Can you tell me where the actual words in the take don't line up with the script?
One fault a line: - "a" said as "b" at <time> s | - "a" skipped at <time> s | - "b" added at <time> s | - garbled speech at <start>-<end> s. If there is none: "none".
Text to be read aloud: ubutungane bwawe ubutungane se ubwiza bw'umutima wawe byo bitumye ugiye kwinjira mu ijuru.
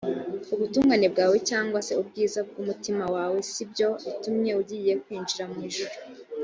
- "ubutungane" said as "cyangwa" at 1.5 s
- "si" added at 3.5 s